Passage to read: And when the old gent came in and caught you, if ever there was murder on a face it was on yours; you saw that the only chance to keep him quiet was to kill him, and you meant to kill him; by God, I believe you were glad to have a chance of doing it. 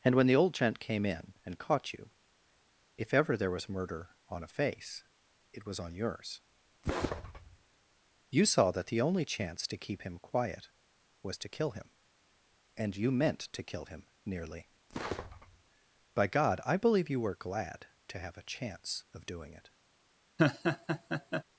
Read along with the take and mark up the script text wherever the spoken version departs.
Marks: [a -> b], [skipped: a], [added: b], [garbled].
And when the old gent came in and caught you, if ever there was murder on a face it was on yours; you saw that the only chance to keep him quiet was to kill him, and you meant to kill him; [added: nearly] by God, I believe you were glad to have a chance of doing it.